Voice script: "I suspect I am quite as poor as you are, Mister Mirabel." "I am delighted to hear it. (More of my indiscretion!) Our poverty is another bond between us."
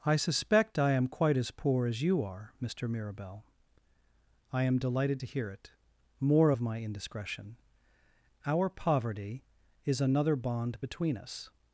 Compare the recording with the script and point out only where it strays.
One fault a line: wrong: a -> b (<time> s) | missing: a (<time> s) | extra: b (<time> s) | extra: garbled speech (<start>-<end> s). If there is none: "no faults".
no faults